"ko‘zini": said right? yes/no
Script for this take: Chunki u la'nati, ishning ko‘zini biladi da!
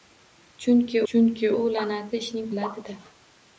no